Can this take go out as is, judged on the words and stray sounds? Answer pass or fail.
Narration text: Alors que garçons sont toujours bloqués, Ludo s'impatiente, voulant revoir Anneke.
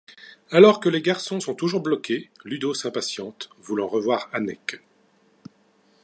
fail